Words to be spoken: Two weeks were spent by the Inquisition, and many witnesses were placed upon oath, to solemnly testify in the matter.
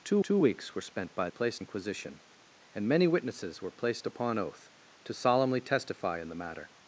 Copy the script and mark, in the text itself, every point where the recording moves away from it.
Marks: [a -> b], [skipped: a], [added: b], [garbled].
Two [added: two] weeks were spent by [the -> placed] Inquisition, and many witnesses were placed upon oath, to solemnly testify in the matter.